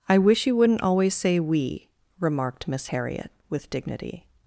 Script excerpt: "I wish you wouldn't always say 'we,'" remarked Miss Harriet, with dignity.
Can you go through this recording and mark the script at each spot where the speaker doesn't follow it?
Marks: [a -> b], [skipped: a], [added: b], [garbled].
"I wish you wouldn't always say 'we,'" remarked Miss Harriet, with dignity.